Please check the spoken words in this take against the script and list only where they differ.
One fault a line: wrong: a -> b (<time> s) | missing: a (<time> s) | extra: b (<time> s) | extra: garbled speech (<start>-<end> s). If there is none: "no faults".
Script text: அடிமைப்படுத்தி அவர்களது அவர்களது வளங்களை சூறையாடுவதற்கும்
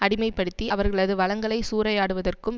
missing: அவர்களது (1.1 s)